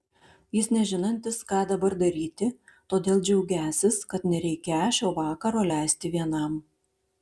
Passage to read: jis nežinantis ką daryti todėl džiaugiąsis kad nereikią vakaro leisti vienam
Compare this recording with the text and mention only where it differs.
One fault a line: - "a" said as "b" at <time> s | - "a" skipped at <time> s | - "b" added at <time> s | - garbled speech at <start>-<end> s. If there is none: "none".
- "dabar" added at 1.7 s
- "šio" added at 5.0 s